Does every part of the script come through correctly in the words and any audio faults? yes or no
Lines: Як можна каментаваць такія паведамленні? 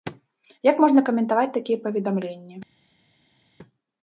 yes